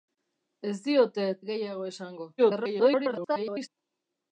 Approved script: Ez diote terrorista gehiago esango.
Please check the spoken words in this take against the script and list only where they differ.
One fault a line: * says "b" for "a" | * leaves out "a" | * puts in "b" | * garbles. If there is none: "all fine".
* leaves out "terrorista"
* garbles